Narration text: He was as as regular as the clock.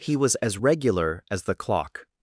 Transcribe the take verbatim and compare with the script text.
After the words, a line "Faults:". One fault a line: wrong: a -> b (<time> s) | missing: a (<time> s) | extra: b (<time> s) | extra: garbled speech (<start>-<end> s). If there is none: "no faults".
He was as regular as the clock.
Faults:
missing: as (0.6 s)